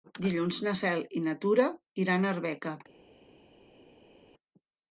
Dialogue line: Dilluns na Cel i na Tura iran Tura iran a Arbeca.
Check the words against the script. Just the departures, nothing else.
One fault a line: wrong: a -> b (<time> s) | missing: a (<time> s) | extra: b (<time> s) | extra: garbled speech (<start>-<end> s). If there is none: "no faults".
missing: Tura iran (2.3 s)